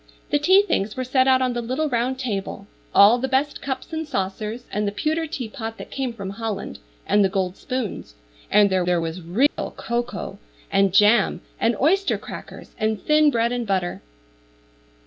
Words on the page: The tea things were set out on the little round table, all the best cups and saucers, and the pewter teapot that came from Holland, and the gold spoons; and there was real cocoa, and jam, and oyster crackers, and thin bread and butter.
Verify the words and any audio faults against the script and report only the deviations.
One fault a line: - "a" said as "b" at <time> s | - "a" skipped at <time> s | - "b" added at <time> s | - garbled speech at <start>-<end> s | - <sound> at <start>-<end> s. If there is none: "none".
- "there" added at 8.9 s
- dropout at 9.5-9.6 s